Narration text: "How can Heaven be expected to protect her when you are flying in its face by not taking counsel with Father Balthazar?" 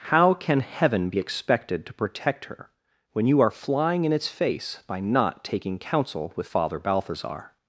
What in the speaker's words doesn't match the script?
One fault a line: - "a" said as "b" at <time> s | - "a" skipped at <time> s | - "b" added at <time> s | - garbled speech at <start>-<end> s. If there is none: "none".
none